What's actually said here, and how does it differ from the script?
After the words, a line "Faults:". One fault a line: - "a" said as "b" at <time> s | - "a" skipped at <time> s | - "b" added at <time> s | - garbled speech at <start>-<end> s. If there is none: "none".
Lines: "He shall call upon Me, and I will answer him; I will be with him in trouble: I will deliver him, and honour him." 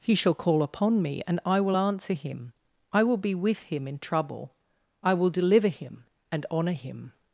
"He shall call upon Me, and I will answer him; I will be with him in trouble: I will deliver him, and honour him."
Faults:
none